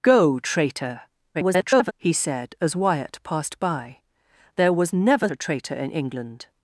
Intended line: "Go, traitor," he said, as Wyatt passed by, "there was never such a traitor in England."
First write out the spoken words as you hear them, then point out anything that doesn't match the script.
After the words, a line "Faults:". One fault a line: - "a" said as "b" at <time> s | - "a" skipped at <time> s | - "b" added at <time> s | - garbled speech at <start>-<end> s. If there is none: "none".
"Go, traitor," [garbled] he said, as Wyatt passed by, "there was never a traitor in England."
Faults:
- garbled speech at 1.3-1.9 s
- "such" skipped at 5.3 s